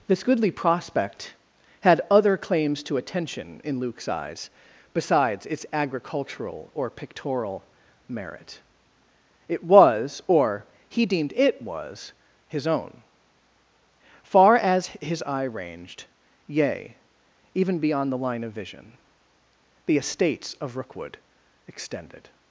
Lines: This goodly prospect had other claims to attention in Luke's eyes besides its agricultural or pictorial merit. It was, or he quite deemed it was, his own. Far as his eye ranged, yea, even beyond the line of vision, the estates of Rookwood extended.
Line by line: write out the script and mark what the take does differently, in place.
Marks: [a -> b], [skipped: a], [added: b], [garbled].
This goodly prospect had other claims to attention in Luke's eyes besides its agricultural or pictorial merit. It was, or he [skipped: quite] deemed it was, his own. Far as his eye ranged, yea, even beyond the line of vision, the estates of Rookwood extended.